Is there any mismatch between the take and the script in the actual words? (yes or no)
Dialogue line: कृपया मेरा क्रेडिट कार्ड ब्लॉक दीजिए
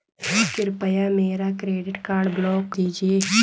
no